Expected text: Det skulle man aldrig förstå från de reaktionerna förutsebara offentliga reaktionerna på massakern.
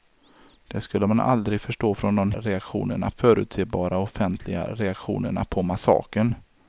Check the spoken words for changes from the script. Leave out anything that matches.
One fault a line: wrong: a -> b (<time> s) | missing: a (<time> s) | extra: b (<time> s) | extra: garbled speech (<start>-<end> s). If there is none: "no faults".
no faults